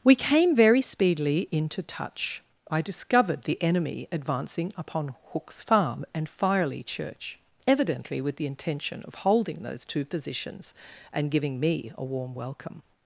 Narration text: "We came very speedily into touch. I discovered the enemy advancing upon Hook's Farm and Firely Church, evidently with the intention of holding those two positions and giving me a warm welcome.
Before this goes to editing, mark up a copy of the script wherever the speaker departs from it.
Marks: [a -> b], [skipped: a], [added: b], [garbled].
"We came very speedily into touch. I discovered the enemy advancing upon Hook's Farm and Firely Church, evidently with the intention of holding those two positions and giving me a warm welcome.